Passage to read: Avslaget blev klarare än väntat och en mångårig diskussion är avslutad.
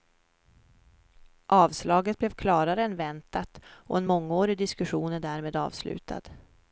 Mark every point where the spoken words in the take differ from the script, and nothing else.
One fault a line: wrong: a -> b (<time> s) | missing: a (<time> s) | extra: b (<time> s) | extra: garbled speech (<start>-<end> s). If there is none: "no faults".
extra: därmed (5.2 s)